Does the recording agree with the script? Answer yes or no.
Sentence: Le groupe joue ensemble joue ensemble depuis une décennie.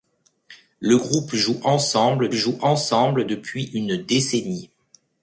yes